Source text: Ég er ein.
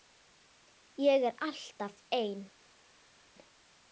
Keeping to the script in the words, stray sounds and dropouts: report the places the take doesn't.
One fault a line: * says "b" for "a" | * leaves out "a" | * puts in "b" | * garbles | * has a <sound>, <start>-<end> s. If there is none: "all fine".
* puts in "alltaf"